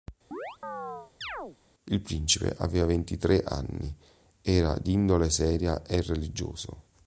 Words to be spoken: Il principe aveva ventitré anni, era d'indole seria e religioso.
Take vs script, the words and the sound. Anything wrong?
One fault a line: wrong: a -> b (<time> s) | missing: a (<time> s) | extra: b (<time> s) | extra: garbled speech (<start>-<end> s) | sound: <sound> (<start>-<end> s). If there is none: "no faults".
sound: chirp (0.3-1.6 s)